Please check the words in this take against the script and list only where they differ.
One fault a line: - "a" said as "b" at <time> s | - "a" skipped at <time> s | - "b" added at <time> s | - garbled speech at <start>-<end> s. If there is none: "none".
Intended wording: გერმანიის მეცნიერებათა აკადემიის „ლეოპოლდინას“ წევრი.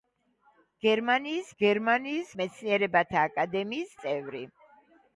- "გერმანიის" added at 1.6 s
- "ლეოპოლდინას" skipped at 3.9 s